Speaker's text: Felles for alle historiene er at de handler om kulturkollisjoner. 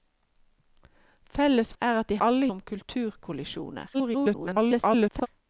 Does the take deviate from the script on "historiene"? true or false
true